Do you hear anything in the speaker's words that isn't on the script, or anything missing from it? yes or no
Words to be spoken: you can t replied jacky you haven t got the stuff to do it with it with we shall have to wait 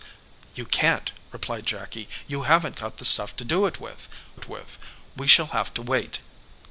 no